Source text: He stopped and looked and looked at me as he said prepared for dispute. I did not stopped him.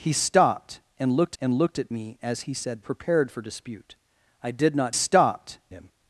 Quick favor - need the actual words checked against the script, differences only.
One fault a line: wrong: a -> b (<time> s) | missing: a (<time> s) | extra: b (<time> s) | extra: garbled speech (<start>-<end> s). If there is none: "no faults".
no faults